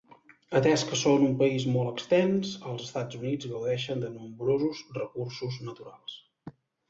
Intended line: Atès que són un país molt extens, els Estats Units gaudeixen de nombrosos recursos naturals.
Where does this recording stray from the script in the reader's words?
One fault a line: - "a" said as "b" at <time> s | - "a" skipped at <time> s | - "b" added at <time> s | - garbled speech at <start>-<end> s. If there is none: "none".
none